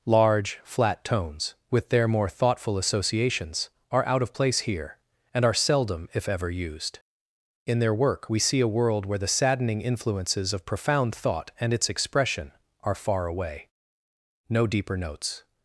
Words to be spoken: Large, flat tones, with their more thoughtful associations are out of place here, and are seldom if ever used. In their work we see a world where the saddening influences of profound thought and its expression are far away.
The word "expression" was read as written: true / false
true